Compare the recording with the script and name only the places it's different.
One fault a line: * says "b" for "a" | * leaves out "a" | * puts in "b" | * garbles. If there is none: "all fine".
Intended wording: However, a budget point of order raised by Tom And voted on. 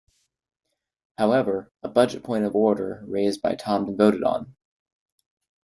all fine